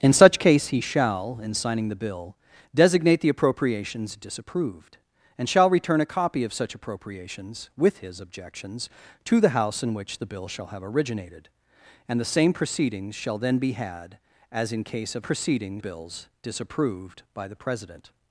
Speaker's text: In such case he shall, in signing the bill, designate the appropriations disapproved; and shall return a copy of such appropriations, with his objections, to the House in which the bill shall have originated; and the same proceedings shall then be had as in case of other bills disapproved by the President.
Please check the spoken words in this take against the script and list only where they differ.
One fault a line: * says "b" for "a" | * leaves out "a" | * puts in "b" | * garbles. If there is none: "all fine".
* says "proceedings" for "other"